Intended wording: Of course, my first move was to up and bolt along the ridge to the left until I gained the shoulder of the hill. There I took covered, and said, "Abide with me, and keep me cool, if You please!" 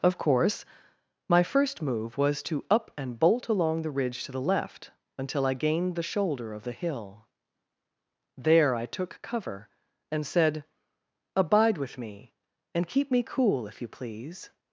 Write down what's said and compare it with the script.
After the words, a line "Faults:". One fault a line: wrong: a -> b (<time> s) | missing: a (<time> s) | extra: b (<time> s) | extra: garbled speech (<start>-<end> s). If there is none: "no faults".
Of course, my first move was to up and bolt along the ridge to the left until I gained the shoulder of the hill. There I took cover, and said, "Abide with me, and keep me cool, if You please!"
Faults:
wrong: covered -> cover (9.2 s)